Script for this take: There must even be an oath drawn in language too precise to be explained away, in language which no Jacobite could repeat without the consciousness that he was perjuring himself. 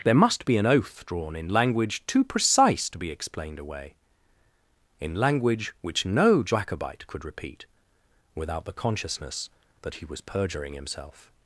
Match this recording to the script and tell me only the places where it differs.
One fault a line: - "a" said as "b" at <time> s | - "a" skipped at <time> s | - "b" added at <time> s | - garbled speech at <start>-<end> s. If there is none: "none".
- "even" skipped at 0.5 s